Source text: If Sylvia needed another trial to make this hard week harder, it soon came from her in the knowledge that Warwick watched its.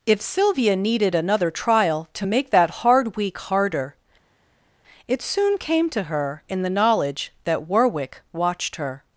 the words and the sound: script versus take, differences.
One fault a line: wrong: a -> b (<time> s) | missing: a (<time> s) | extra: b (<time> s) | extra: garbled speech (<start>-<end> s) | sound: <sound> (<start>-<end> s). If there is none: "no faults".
wrong: this -> that (2.5 s)
wrong: from -> to (5.9 s)
wrong: its -> her (8.8 s)